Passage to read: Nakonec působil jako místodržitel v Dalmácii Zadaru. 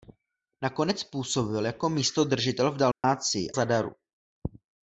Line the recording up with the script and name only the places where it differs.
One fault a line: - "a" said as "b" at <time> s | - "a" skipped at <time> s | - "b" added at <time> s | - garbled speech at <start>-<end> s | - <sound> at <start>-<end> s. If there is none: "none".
- dropout at 2.9-3.0 s